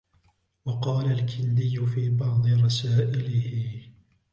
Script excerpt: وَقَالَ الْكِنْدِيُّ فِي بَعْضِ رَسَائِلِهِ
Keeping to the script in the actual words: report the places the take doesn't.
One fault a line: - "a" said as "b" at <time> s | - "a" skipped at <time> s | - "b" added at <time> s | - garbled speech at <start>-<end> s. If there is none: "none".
none